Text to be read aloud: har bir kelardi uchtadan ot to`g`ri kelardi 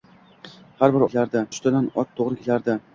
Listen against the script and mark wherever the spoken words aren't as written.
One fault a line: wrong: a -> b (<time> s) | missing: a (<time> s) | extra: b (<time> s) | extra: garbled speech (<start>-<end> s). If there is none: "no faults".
no faults